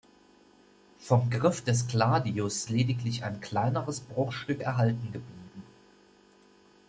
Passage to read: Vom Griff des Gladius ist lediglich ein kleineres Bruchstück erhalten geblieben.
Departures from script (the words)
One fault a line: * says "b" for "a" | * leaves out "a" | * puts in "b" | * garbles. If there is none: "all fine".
* leaves out "ist"